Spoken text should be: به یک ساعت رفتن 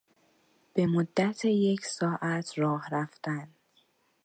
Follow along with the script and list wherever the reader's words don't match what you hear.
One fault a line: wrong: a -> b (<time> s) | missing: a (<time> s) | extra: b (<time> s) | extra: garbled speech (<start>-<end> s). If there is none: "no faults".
extra: مدت (0.8 s)
extra: راه (2.6 s)